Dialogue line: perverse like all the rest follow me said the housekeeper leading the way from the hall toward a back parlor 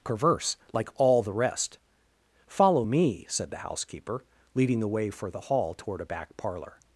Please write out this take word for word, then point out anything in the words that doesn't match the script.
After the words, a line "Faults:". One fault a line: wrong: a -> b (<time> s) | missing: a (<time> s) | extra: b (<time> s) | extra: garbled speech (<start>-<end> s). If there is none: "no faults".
perverse like all the rest follow me said the housekeeper leading the way for the hall toward a back parlor
Faults:
wrong: from -> for (5.1 s)